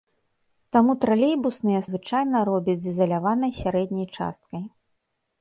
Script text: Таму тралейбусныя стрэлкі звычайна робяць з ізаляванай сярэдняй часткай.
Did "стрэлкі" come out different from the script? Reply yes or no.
yes